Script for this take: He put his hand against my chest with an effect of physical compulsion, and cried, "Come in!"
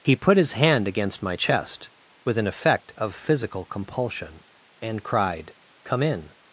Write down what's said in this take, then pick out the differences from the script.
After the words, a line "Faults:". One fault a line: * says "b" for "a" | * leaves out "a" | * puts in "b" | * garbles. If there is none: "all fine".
He put his hand against my chest with an effect of physical compulsion, and cried, "Come in!"
Faults:
all fine